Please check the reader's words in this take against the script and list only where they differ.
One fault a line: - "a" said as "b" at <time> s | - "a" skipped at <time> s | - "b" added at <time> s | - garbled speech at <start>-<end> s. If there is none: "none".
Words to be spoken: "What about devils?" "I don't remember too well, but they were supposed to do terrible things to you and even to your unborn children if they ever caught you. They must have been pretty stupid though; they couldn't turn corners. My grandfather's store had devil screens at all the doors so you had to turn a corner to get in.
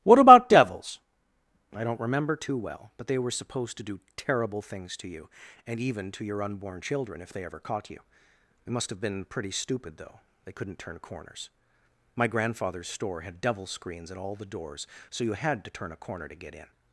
none